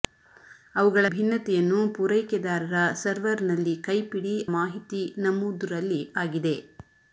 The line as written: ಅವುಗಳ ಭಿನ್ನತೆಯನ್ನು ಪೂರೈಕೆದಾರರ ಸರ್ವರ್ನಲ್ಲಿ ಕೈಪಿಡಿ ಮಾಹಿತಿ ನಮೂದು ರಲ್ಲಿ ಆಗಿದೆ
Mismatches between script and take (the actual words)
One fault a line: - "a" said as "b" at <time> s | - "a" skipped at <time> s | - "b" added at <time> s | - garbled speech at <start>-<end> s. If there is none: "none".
none